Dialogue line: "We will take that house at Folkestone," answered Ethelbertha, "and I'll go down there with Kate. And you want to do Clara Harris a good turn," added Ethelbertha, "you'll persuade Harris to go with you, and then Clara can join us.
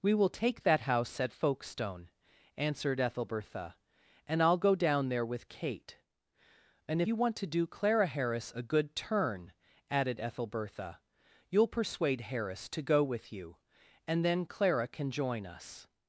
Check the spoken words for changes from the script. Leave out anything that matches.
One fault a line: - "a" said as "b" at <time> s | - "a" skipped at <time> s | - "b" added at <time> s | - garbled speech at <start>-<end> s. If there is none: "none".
none